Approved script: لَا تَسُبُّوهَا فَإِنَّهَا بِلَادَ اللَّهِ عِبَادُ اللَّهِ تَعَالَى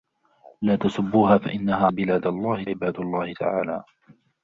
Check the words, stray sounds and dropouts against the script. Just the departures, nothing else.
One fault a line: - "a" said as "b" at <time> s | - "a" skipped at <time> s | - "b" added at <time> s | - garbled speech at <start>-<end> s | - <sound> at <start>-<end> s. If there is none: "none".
none